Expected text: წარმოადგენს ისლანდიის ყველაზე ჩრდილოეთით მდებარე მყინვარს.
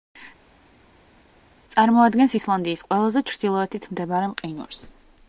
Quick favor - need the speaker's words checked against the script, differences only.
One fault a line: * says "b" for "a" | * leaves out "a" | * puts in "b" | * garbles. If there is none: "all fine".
all fine